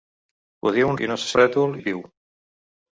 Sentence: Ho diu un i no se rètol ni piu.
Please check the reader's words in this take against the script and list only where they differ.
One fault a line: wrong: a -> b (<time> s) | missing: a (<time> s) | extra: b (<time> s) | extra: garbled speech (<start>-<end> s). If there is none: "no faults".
no faults